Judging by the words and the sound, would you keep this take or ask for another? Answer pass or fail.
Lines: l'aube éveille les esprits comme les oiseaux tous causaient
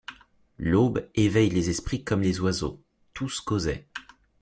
pass